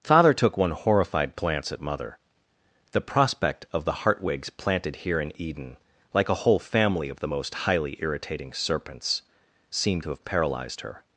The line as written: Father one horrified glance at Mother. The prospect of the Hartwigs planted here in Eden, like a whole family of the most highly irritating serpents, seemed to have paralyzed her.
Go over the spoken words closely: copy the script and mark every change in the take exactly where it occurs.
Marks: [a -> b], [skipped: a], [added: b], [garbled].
Father [added: took] one horrified glance at Mother. The prospect of the Hartwigs planted here in Eden, like a whole family of the most highly irritating serpents, seemed to have paralyzed her.